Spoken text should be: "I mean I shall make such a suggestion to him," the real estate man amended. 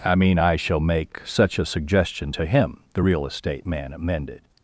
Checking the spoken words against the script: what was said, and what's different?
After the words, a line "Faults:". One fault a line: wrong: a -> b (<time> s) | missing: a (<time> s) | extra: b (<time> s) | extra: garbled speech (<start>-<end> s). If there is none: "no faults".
"I mean I shall make such a suggestion to him," the real estate man amended.
Faults:
no faults